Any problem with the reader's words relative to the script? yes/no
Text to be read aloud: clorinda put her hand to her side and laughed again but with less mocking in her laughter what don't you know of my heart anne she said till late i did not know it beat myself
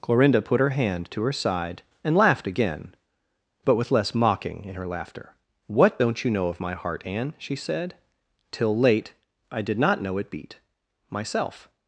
no